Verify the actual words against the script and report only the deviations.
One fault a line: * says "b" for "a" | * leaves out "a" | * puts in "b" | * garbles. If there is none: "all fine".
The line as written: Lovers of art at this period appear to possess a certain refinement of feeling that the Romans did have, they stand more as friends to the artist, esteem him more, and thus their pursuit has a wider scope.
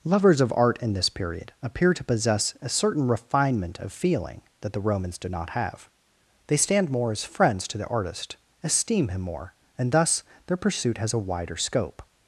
* says "in" for "at"
* puts in "not"